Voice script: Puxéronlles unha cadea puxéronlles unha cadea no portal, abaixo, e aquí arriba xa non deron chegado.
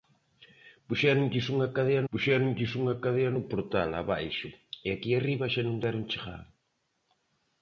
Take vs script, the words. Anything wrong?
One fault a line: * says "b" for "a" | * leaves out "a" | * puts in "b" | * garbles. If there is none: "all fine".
all fine